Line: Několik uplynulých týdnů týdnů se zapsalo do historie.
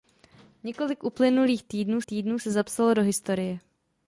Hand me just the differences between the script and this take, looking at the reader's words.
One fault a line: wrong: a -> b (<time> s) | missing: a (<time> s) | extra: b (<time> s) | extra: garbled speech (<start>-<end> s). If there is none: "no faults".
no faults